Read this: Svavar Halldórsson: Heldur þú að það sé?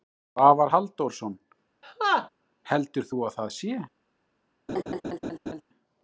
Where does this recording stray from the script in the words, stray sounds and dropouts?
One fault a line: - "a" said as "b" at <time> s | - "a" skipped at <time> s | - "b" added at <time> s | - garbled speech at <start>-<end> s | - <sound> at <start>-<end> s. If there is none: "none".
- laugh at 1.8-2.3 s
- laugh at 4.7-5.6 s